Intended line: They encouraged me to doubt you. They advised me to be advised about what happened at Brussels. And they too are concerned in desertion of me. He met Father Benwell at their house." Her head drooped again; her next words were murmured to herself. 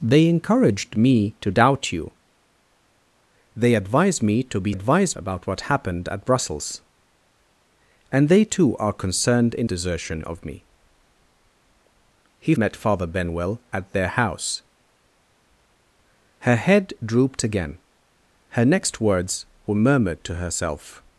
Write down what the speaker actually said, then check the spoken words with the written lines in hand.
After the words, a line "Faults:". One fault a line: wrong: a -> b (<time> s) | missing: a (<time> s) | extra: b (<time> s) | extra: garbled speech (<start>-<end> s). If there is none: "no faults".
They encouraged me to doubt you. They advised me to be advised about what happened at Brussels. And they too are concerned in desertion of me. He met Father Benwell at their house." Her head drooped again; her next words were murmured to herself.
Faults:
no faults